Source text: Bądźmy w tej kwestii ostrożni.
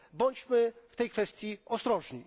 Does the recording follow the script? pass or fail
pass